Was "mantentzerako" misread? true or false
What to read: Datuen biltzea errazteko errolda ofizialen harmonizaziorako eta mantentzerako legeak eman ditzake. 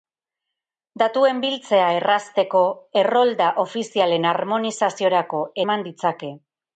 true